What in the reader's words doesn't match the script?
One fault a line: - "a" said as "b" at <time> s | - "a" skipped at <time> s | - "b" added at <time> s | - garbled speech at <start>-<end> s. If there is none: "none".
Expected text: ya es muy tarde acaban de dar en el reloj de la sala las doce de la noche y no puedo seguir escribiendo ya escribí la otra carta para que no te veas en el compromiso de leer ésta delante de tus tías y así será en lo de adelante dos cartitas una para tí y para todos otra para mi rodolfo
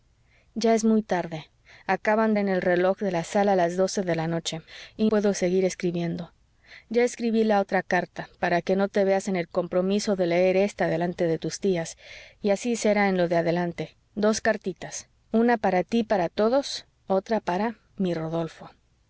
- "de dar" skipped at 2.3 s
- "no" skipped at 5.1 s